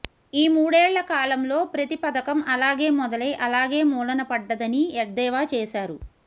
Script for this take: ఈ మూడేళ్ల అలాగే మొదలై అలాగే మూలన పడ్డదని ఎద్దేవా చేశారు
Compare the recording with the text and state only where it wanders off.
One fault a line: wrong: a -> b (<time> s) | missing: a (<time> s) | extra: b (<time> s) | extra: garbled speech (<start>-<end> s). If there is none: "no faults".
extra: కాలంలో ప్రతి పథకం (1.1 s)